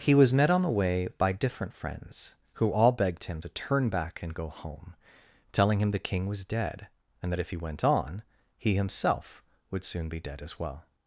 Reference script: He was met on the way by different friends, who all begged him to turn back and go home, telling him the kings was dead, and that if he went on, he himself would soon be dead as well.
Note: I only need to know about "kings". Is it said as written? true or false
false